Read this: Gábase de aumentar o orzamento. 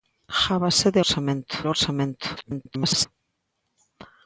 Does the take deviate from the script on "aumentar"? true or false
true